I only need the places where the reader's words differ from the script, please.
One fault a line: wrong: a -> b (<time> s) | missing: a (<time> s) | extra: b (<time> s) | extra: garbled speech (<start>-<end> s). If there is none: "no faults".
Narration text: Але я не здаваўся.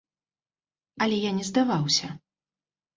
no faults